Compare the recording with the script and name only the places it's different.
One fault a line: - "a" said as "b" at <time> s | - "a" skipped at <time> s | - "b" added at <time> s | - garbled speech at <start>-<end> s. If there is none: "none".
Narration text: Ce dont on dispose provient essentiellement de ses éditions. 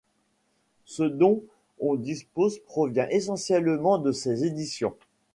none